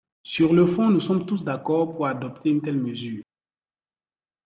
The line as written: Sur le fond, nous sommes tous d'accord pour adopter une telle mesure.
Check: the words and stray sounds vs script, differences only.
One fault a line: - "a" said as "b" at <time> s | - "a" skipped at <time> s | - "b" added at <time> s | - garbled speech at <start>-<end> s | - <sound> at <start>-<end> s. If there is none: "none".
none